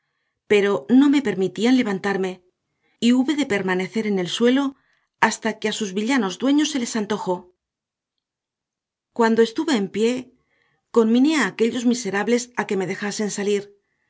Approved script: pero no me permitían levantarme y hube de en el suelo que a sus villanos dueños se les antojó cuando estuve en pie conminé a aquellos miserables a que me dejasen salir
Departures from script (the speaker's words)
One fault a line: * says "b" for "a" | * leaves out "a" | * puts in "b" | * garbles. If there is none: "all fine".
* puts in "permanecer"
* puts in "hasta"